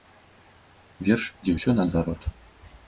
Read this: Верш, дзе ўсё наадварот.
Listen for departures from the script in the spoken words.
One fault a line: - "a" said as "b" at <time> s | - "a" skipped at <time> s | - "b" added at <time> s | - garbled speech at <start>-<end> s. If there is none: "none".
none